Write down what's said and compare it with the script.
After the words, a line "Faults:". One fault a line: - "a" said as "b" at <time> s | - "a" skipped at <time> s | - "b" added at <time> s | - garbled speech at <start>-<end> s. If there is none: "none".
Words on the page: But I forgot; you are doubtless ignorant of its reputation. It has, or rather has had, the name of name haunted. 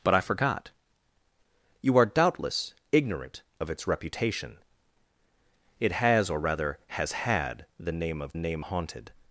But I forgot; you are doubtless ignorant of its reputation. It has, or rather has had, the name of name haunted.
Faults:
none